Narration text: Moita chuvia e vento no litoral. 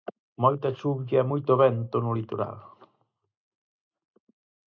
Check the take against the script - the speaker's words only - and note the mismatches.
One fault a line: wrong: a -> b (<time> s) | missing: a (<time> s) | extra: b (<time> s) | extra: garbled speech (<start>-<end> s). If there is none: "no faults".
extra: moito (1.3 s)